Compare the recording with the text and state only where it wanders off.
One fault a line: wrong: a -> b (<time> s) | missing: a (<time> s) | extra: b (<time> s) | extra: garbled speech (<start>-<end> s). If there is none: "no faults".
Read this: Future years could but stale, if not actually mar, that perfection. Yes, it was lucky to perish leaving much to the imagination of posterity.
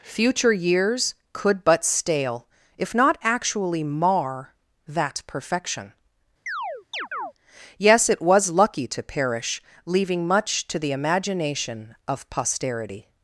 no faults